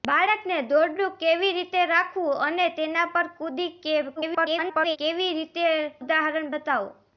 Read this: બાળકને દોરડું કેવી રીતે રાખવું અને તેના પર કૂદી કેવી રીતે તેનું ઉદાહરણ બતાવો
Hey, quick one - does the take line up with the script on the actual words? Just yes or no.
no